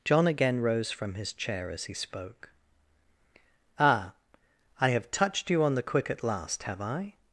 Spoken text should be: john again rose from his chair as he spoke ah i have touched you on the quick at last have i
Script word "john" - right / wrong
right